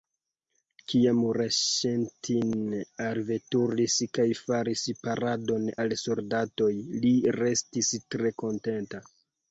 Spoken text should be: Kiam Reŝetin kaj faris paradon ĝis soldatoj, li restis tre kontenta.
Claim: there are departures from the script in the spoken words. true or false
true